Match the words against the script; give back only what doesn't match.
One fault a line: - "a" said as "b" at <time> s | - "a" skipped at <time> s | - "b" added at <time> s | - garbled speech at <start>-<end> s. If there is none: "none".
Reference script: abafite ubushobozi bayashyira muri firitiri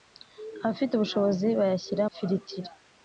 - "muri" skipped at 2.0 s